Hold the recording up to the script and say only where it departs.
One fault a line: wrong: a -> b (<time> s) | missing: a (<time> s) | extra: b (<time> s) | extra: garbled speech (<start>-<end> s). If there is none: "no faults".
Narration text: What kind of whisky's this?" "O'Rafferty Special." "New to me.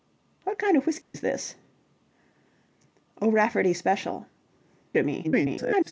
missing: New (4.2 s)
extra: garbled speech (5.2-5.9 s)